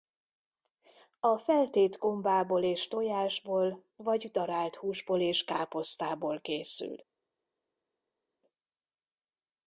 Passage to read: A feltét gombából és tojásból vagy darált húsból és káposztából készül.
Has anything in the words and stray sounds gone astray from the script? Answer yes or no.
no